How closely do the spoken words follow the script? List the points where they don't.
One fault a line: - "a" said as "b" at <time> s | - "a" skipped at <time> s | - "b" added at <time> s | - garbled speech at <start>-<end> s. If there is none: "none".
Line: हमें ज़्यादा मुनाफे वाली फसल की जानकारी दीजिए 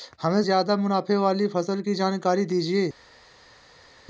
none